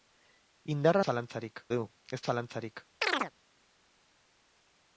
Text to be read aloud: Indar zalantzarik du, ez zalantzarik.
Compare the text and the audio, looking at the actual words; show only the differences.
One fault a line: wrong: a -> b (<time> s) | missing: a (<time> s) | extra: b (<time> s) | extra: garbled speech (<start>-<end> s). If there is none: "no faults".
no faults